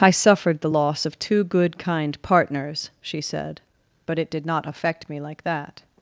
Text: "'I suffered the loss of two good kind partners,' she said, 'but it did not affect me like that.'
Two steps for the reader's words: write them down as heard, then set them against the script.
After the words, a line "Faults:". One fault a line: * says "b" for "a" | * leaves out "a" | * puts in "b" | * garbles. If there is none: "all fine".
"'I suffered the loss of two good kind partners,' she said, 'but it did not affect me like that.'
Faults:
all fine